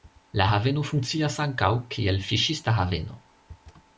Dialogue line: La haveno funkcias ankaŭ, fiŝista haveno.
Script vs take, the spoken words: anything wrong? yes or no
yes